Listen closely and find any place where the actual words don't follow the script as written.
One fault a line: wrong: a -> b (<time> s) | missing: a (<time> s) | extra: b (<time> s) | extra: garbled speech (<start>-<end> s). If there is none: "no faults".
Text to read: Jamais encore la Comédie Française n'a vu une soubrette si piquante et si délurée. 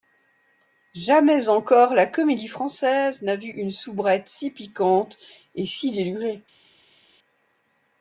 no faults